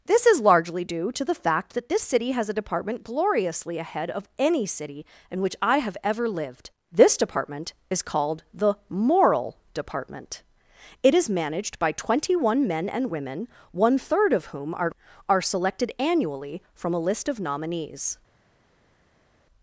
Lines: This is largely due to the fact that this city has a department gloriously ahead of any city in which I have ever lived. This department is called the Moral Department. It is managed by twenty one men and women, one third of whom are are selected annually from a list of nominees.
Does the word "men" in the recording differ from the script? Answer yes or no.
no